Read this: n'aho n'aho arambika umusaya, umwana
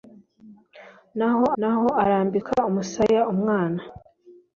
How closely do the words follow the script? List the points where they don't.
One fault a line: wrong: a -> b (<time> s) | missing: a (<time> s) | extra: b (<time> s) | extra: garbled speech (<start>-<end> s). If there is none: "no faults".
no faults